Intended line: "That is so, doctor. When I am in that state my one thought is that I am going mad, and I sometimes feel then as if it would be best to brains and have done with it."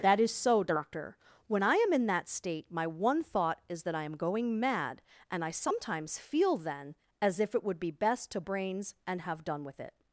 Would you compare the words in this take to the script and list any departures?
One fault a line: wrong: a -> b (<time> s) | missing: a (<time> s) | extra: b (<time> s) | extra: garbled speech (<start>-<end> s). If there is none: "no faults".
no faults